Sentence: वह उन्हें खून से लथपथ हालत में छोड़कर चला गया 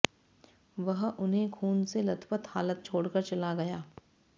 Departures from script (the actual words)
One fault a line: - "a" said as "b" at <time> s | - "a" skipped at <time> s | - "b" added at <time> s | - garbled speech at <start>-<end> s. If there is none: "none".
- "में" skipped at 2.8 s